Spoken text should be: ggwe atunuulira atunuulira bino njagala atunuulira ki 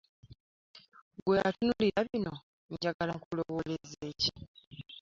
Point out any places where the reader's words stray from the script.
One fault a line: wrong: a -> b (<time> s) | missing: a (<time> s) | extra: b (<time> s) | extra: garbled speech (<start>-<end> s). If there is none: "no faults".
missing: atunuulira (2.0 s)
wrong: atunuulira -> nkulowooleze (3.2 s)